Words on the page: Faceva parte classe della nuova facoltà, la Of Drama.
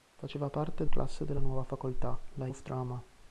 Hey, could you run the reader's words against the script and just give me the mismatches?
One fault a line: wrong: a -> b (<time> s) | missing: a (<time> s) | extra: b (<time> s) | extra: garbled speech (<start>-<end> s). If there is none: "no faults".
no faults